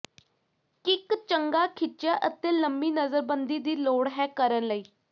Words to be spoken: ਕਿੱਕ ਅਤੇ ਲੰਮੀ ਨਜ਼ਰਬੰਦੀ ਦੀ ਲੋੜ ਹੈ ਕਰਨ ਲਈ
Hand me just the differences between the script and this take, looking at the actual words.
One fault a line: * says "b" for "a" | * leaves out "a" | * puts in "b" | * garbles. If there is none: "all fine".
* puts in "ਚੰਗਾ ਖਿੱਚਿਆ"